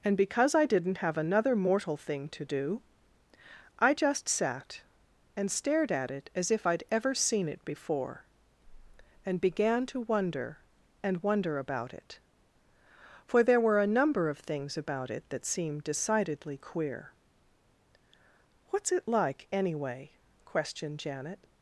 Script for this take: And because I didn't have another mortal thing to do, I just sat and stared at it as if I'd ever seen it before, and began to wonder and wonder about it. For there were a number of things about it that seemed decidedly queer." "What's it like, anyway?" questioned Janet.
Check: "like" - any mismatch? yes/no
no